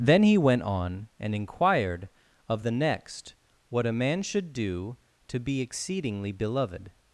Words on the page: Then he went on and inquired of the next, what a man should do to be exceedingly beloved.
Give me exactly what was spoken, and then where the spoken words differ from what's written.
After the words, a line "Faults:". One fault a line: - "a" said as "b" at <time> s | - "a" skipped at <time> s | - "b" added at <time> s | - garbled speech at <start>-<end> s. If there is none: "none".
Then he went on and inquired of the next, what a man should do to be exceedingly beloved.
Faults:
none